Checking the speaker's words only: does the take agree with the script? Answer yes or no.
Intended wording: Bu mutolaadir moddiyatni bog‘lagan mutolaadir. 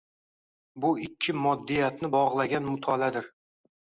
no